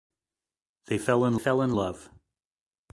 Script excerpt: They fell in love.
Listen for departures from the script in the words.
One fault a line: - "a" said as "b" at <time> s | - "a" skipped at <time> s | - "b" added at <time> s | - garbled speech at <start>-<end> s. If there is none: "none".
- "fell in" added at 1.4 s